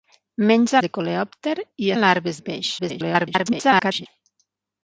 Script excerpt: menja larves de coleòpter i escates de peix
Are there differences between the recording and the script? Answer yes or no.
yes